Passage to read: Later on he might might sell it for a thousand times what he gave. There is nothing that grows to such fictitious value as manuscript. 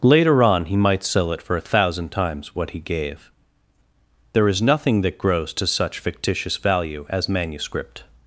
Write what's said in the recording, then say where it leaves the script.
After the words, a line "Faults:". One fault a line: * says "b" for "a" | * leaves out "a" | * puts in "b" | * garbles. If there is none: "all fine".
Later on he might sell it for a thousand times what he gave. There is nothing that grows to such fictitious value as manuscript.
Faults:
* leaves out "might"